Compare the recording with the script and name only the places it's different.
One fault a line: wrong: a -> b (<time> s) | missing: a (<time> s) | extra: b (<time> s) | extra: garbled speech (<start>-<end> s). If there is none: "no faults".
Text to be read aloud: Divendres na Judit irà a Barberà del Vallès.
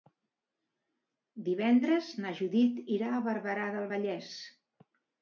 no faults